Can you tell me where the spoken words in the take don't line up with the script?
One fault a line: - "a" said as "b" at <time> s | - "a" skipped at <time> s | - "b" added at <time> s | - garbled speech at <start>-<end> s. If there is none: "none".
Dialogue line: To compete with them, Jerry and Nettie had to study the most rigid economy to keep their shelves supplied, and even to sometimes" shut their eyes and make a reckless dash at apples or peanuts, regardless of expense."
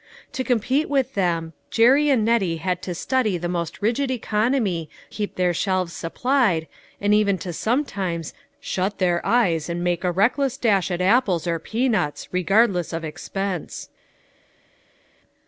- "to" skipped at 4.9 s